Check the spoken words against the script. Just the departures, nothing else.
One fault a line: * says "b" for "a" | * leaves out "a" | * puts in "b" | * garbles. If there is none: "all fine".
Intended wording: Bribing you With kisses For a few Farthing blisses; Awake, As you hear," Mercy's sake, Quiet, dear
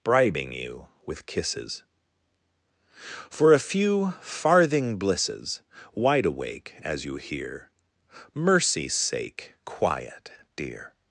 * puts in "Wide"